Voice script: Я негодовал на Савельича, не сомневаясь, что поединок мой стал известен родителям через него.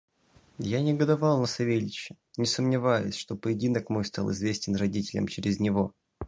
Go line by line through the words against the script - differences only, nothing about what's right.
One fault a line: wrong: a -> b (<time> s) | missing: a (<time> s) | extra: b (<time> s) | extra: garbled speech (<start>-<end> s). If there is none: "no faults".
no faults